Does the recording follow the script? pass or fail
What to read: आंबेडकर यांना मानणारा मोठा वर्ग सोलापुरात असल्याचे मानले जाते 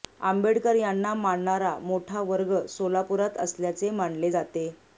pass